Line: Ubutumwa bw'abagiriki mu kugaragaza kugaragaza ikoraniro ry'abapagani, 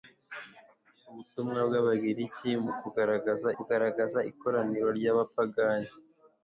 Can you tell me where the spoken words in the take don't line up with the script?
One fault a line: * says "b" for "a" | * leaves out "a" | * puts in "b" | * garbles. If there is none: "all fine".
all fine